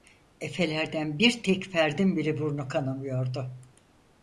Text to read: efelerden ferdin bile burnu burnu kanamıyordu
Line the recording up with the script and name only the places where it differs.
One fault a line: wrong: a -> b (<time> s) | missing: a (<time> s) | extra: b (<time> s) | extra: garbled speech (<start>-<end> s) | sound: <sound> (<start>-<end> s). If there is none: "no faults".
extra: bir tek (1.2 s)
missing: burnu (2.7 s)